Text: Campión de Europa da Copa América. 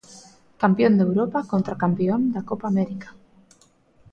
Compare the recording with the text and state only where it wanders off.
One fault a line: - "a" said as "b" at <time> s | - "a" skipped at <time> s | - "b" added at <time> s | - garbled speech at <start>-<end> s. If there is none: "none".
- "contra Campión" added at 1.5 s